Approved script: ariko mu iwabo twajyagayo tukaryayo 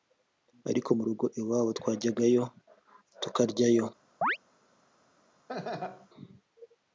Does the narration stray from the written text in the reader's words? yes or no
yes